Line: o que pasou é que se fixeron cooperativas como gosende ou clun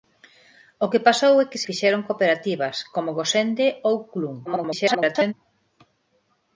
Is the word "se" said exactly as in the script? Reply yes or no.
no